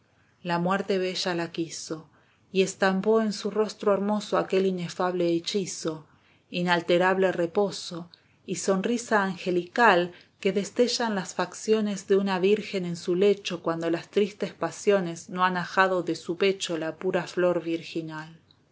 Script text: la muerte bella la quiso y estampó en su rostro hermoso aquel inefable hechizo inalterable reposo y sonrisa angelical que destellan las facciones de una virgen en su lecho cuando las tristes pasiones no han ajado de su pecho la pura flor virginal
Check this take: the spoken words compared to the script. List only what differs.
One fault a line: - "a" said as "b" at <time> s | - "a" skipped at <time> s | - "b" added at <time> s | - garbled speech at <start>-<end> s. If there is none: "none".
none